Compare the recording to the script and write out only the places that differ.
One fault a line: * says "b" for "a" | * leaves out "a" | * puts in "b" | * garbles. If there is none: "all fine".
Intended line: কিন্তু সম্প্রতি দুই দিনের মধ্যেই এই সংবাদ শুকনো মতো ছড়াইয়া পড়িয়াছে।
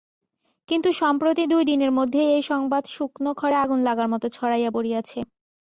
* puts in "খড়ে আগুন লাগার"